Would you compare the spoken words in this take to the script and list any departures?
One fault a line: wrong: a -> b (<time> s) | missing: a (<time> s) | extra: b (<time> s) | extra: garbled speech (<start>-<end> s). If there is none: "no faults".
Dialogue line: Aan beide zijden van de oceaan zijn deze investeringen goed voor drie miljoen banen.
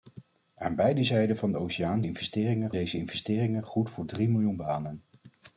wrong: zijn -> investeringen (2.0 s)